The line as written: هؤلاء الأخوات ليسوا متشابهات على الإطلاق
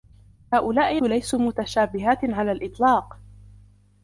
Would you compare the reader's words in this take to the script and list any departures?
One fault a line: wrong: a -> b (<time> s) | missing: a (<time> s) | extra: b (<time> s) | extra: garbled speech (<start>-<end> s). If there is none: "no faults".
missing: الأخوات (1.0 s)